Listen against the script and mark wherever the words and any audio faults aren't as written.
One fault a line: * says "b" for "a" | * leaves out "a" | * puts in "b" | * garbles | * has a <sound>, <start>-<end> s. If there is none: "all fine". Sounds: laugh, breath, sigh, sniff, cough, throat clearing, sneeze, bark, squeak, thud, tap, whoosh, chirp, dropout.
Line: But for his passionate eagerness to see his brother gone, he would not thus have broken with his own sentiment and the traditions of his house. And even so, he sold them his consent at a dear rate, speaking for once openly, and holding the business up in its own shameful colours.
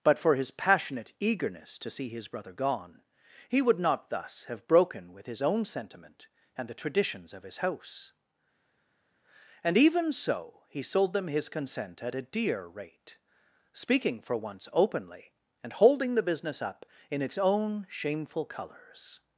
all fine